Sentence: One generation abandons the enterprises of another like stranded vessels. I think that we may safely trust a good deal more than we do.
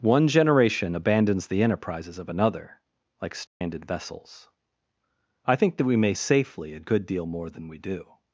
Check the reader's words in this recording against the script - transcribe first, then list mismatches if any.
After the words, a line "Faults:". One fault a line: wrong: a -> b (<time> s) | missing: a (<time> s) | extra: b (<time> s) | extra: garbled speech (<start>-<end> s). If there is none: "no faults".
One generation abandons the enterprises of another like stranded vessels. I think that we may safely a good deal more than we do.
Faults:
missing: trust (6.7 s)